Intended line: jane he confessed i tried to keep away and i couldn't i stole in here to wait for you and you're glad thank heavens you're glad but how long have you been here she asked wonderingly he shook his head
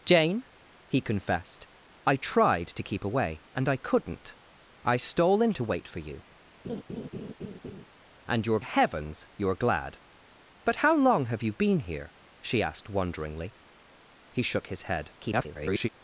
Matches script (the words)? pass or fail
fail